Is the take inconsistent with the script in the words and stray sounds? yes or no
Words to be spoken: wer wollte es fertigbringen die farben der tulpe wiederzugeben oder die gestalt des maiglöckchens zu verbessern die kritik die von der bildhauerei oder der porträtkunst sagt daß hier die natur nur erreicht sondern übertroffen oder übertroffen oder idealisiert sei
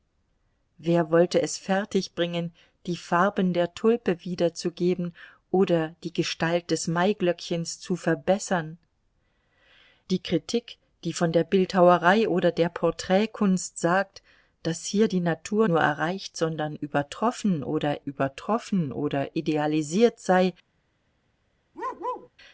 yes